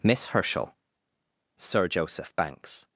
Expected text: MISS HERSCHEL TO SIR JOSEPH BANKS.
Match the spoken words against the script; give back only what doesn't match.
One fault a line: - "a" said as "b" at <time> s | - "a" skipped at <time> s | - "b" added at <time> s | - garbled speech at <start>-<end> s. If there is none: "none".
- "TO" skipped at 0.7 s